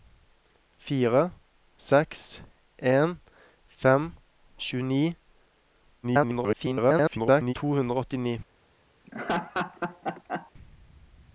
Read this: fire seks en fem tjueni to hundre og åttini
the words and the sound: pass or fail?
fail